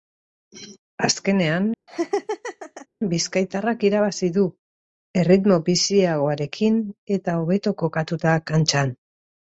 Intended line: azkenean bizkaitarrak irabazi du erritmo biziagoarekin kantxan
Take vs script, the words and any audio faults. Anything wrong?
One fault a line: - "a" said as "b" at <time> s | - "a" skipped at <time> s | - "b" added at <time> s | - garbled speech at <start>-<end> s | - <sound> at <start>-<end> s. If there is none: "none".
- laugh at 1.9-2.9 s
- "eta hobeto kokatuta" added at 7.2 s